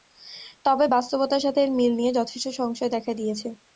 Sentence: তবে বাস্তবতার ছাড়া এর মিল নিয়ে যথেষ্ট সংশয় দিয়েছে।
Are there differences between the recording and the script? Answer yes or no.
yes